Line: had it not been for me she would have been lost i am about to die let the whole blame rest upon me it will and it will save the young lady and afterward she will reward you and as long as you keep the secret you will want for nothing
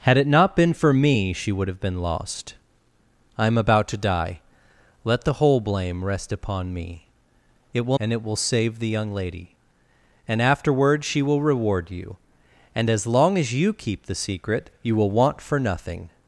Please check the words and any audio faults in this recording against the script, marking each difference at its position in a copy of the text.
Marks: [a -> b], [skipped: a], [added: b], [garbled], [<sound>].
had it not been for me she would have been lost i am about to die let the whole blame rest upon me it will and it will save the young lady and afterward she will reward you and as long as you keep the secret you will want for nothing